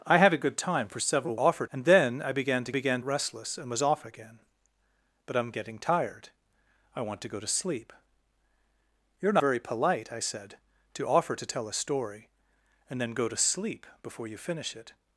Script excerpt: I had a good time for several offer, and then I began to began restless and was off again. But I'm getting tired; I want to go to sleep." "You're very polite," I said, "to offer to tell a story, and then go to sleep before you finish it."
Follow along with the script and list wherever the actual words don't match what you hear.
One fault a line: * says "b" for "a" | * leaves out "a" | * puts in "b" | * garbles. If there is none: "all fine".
all fine